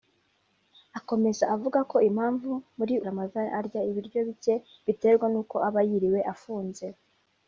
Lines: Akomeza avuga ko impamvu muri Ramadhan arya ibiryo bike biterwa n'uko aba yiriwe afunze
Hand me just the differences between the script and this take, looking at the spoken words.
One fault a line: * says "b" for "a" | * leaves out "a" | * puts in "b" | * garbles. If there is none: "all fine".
all fine